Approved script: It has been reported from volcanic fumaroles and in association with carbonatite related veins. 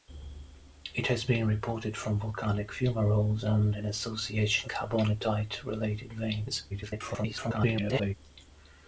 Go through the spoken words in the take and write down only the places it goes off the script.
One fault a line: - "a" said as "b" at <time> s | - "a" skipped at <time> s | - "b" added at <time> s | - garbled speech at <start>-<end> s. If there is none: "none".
- "with" skipped at 4.7 s
- garbled speech at 6.7-8.2 s